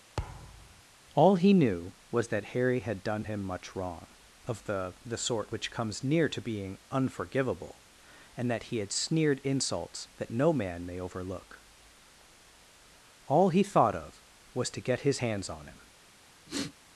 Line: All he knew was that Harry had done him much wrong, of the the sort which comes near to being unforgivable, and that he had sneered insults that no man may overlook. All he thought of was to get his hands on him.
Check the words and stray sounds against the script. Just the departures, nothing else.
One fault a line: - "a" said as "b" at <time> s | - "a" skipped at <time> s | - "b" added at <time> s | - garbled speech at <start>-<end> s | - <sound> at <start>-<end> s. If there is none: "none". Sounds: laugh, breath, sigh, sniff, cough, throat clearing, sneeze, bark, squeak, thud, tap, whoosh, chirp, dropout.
- thud at 0.2-0.8 s
- sniff at 16.5-16.7 s